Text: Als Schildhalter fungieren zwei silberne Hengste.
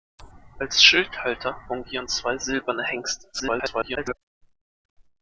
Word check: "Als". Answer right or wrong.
right